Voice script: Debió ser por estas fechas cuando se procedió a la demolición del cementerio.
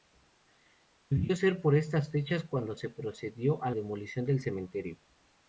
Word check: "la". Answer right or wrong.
wrong